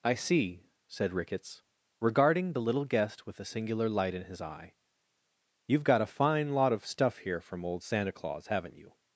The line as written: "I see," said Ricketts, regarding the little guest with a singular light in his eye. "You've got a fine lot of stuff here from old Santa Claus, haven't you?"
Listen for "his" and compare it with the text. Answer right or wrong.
right